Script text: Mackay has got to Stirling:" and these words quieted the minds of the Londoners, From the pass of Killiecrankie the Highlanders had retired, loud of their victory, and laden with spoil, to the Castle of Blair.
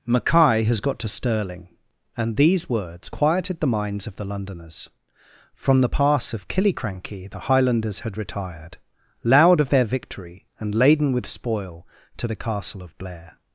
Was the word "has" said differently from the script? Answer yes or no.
no